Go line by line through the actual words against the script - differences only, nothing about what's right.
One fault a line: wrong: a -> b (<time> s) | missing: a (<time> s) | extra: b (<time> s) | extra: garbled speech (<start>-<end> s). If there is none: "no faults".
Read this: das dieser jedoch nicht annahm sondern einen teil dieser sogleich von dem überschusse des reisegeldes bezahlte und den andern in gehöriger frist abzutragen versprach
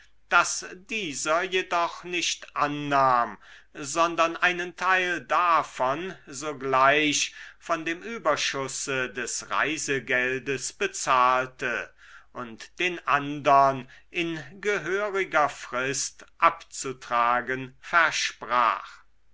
wrong: dieser -> davon (5.2 s)